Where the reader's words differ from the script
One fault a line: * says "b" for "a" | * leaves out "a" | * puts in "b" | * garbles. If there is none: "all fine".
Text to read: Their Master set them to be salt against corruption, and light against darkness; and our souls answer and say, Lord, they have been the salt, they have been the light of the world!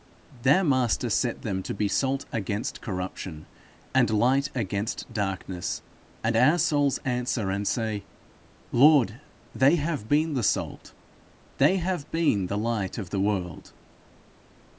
all fine